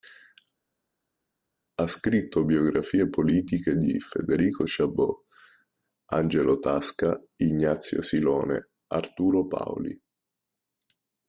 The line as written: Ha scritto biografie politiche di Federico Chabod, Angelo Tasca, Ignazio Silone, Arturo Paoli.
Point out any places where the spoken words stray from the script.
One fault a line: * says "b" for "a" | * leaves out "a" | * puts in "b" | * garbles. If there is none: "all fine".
all fine